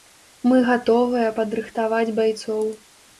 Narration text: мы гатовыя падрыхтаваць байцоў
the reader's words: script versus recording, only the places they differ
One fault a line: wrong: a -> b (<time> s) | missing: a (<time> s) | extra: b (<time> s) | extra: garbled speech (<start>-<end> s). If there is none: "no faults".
no faults